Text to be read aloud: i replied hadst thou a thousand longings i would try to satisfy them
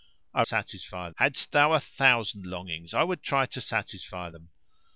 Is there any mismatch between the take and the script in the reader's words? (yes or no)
yes